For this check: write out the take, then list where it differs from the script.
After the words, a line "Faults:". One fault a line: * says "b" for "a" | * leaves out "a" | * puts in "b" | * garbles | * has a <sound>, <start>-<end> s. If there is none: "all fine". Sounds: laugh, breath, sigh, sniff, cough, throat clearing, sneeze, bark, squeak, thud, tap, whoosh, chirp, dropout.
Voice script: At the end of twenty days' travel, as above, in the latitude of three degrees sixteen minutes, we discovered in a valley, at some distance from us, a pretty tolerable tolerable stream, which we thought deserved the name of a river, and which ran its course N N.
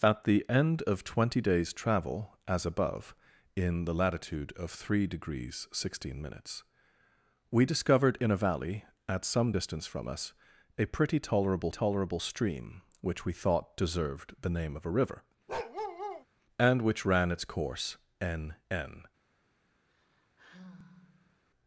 At the end of twenty days' travel, as above, in the latitude of three degrees sixteen minutes, we discovered in a valley, at some distance from us, a pretty tolerable tolerable stream, which we thought deserved the name of a river, and which ran its course N N.
Faults:
* has a bark, 15.5-16.3 s
* has a sigh, 19.9-21.4 s